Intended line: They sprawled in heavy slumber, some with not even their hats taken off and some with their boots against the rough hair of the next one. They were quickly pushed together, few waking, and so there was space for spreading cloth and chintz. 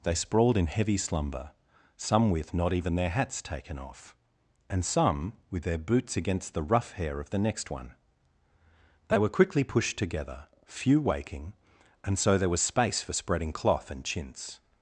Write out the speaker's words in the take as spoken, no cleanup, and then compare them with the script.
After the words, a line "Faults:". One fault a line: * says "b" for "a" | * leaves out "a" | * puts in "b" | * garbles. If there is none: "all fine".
They sprawled in heavy slumber, some with not even their hats taken off and some with their boots against the rough hair of the next one. They were quickly pushed together, few waking, and so there was space for spreading cloth and chintz.
Faults:
all fine